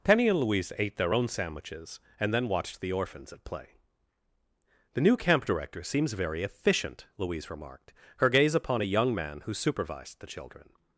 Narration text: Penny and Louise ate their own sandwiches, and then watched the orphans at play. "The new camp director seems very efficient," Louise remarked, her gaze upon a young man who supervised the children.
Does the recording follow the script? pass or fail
pass